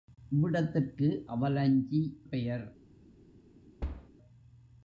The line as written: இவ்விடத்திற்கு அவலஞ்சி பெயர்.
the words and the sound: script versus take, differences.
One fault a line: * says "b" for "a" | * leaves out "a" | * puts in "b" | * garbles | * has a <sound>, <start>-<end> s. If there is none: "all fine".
* has a thud, 3.8-4.1 s